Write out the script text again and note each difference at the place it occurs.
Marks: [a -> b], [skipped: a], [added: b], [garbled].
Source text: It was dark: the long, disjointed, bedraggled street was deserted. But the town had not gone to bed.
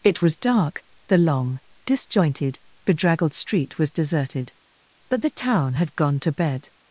It was dark: the long, disjointed, bedraggled street was deserted. But the town had [skipped: not] gone to bed.